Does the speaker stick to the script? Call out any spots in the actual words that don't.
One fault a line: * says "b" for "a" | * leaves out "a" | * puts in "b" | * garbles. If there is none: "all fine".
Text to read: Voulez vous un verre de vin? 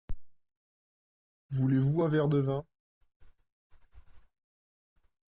all fine